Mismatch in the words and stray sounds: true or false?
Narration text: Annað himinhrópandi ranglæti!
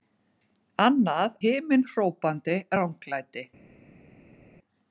false